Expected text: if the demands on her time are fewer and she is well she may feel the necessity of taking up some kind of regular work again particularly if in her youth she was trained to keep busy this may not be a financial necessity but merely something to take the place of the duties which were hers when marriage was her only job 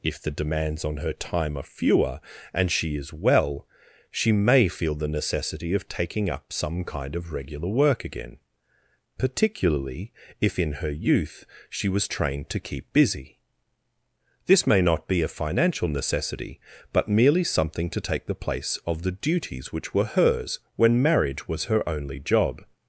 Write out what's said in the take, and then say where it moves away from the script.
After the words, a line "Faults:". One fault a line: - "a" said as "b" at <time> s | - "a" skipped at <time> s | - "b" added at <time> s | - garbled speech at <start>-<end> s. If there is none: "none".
if the demands on her time are fewer and she is well she may feel the necessity of taking up some kind of regular work again particularly if in her youth she was trained to keep busy this may not be a financial necessity but merely something to take the place of the duties which were hers when marriage was her only job
Faults:
none